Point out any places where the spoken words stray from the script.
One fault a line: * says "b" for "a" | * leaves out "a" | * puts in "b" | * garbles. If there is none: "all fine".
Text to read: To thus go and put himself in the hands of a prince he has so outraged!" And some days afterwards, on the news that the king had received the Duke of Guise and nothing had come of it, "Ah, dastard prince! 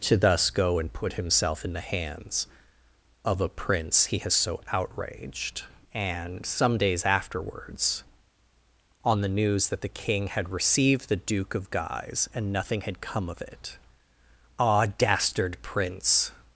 all fine